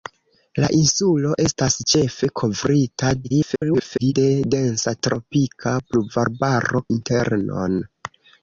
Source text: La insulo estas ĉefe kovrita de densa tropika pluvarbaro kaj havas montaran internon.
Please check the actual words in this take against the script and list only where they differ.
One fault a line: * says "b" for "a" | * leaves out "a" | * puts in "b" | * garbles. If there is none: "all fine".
* garbles
* leaves out "kaj havas montaran"